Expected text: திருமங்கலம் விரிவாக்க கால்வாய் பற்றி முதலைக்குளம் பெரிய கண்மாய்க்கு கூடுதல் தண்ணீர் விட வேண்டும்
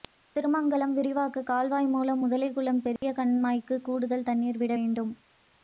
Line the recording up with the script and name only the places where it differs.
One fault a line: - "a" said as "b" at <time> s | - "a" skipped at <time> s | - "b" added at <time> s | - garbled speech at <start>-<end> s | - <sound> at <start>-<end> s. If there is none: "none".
- "பற்றி" said as "மூலம்" at 1.9 s
- dropout at 3.0-3.0 s